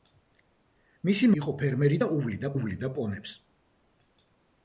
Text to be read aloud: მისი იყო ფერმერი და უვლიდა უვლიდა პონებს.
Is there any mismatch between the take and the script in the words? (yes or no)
no